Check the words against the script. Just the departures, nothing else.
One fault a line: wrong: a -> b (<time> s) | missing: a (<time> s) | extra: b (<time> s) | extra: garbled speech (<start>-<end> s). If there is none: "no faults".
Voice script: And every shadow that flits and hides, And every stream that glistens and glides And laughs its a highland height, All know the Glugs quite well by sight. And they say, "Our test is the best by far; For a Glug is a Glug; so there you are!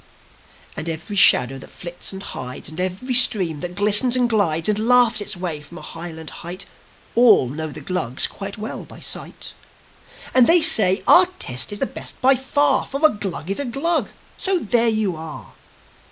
extra: way from (5.4 s)